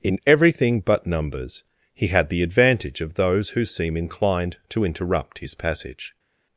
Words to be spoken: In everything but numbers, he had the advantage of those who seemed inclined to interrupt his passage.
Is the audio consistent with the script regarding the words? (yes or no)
no